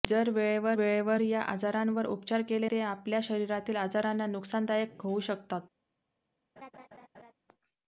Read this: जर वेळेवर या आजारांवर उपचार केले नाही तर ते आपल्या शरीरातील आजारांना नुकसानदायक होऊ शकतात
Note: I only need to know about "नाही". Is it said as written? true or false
false